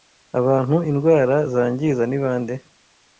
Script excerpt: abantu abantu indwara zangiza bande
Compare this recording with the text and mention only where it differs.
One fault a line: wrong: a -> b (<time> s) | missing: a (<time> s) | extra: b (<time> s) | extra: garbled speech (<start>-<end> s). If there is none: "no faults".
missing: abantu (0.8 s)
extra: ni (2.1 s)